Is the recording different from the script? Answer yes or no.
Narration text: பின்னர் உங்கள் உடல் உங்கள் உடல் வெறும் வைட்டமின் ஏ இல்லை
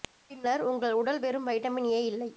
yes